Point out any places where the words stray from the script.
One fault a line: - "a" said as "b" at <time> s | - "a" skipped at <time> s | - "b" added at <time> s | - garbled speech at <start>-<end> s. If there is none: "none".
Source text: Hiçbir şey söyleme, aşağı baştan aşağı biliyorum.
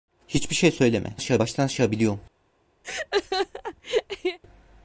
none